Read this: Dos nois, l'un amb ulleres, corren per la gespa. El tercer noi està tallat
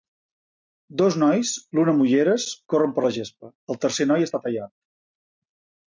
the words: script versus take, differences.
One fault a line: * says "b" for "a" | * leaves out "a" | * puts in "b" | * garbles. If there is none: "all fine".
all fine